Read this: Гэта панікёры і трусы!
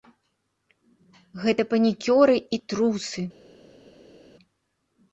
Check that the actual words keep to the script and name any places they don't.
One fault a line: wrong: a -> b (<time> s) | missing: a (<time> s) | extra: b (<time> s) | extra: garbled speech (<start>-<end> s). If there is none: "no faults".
no faults